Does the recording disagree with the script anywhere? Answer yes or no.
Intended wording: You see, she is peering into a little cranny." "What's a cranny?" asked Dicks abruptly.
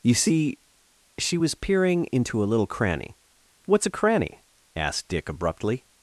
yes